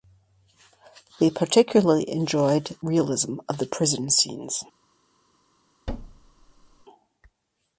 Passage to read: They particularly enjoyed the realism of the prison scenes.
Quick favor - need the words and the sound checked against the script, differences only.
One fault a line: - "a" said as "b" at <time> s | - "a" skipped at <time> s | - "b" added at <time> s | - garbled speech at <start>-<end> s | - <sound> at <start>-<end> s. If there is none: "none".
- "the" skipped at 2.8 s
- thud at 5.9-6.9 s